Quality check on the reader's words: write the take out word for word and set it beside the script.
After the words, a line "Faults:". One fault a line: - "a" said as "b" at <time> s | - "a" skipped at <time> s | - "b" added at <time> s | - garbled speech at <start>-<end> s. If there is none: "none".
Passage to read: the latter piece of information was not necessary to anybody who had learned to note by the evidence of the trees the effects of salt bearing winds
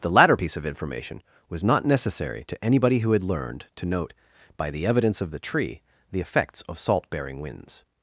the latter piece of information was not necessary to anybody who had learned to note by the evidence of the tree the effects of salt bearing winds
Faults:
- "trees" said as "tree" at 5.4 s